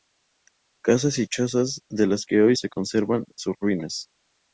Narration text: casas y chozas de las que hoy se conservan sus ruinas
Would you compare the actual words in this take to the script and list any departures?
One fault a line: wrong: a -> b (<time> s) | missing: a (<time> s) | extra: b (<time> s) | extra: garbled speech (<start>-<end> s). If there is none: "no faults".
no faults